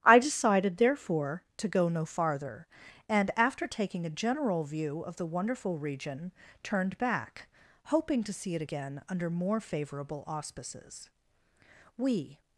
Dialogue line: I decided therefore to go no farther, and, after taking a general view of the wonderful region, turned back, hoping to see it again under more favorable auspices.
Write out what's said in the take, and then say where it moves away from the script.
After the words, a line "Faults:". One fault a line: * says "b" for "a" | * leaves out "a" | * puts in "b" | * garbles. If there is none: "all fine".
I decided therefore to go no farther, and, after taking a general view of the wonderful region, turned back, hoping to see it again under more favorable auspices. We
Faults:
* puts in "We"